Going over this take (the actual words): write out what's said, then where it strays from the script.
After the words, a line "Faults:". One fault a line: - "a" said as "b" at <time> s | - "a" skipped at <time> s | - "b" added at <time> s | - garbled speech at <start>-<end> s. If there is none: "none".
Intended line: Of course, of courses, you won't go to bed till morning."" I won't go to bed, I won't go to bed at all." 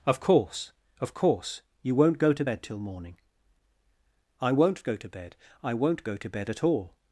Of course, of course, you won't go to bed till morning."" I won't go to bed, I won't go to bed at all."
Faults:
- "courses" said as "course" at 1.1 s